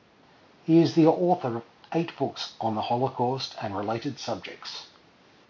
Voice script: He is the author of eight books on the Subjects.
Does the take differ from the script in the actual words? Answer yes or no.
yes